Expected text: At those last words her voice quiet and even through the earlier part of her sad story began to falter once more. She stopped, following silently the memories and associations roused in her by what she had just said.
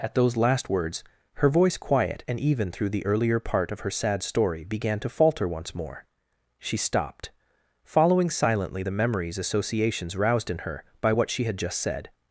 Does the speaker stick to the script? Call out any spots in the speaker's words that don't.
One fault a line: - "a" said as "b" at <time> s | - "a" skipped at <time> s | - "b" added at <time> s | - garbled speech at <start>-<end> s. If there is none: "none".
- "and" skipped at 9.4 s